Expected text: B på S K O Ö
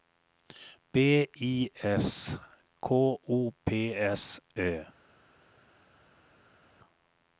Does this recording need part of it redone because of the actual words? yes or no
yes